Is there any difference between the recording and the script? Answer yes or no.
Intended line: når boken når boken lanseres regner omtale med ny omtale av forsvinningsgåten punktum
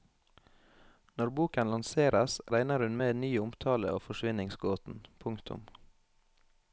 yes